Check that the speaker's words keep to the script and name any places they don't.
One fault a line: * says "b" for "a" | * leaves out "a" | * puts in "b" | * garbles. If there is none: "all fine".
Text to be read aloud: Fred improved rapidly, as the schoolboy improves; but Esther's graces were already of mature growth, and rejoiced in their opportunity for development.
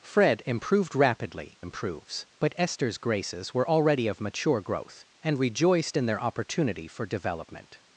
* leaves out "as the schoolboy"